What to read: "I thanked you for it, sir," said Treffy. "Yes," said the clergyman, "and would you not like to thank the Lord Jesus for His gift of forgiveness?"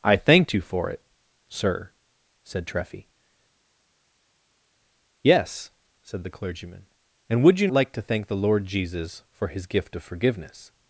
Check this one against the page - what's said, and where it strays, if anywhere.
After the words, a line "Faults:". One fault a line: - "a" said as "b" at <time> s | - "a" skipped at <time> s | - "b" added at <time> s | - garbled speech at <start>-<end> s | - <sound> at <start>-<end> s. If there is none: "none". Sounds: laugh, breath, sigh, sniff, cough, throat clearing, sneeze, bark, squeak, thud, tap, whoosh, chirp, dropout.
"I thanked you for it, sir," said Treffy. "Yes," said the clergyman, "and would you like to thank the Lord Jesus for His gift of forgiveness?"
Faults:
- "not" skipped at 7.7 s